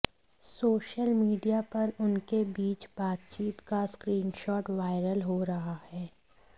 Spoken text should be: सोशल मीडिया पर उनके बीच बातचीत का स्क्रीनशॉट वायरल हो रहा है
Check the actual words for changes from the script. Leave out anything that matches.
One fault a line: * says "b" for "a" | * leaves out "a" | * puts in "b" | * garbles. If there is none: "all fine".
all fine